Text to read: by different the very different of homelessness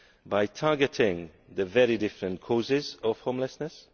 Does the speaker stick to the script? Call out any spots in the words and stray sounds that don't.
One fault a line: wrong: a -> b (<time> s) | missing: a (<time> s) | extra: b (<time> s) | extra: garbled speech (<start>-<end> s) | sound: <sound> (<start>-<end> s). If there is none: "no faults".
wrong: different -> targeting (0.5 s)
extra: causes (2.4 s)